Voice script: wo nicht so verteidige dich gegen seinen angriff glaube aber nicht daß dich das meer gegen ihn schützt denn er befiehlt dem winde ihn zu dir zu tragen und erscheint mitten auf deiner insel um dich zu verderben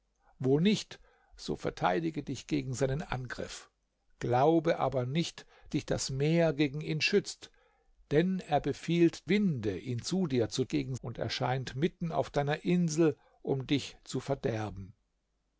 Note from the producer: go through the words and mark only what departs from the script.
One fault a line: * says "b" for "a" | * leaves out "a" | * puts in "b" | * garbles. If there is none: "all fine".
* leaves out "daß"
* leaves out "dem"
* says "gegen" for "tragen"